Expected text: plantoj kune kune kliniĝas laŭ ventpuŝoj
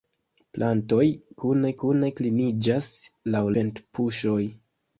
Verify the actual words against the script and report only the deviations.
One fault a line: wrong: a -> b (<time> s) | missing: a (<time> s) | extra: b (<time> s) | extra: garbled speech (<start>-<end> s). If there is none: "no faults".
no faults